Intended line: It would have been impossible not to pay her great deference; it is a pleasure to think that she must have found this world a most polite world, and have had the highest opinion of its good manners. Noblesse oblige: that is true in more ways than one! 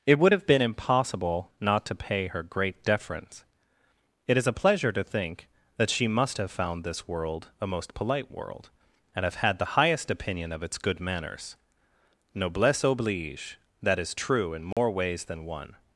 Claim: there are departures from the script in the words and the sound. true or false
true